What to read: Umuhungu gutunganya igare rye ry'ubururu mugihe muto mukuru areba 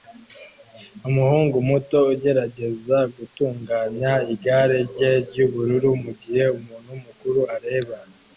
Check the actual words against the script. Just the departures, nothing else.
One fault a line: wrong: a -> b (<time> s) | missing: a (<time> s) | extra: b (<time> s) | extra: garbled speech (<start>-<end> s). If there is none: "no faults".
extra: muto ugerageza (1.7 s)
wrong: muto -> umuntu (6.6 s)